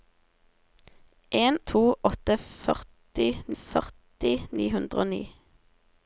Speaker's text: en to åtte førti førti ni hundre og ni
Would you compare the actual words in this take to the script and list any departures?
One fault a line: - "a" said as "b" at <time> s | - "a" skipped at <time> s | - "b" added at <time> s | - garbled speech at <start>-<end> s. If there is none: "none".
none